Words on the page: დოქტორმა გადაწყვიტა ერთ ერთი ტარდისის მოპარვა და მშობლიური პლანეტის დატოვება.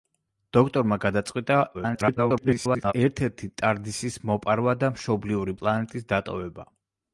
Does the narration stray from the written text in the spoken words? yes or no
yes